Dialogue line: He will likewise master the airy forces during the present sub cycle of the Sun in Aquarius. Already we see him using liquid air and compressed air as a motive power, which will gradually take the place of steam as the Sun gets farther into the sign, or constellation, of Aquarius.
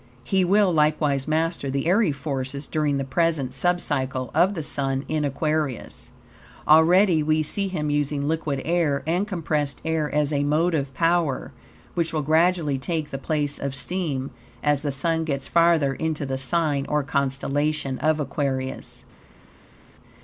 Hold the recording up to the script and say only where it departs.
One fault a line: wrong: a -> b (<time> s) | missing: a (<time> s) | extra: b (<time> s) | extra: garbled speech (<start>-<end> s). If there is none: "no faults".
no faults